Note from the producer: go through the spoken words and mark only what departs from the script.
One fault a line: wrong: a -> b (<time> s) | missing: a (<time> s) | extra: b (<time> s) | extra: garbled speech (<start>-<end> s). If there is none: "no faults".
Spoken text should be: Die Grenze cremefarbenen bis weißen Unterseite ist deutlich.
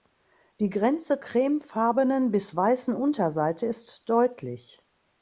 no faults